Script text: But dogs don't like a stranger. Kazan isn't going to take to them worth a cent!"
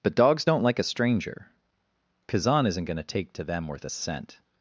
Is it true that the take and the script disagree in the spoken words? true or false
false